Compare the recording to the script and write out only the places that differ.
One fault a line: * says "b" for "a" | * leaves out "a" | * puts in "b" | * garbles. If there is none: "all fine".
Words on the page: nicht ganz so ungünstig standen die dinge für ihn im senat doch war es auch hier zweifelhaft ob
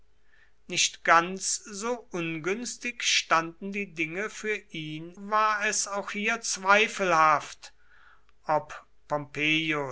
* leaves out "im senat doch"